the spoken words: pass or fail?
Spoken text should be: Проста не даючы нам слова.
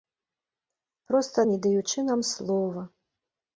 pass